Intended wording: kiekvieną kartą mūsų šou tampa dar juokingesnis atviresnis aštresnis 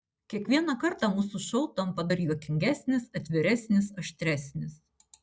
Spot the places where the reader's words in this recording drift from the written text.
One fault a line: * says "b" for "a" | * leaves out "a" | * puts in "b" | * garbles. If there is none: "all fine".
all fine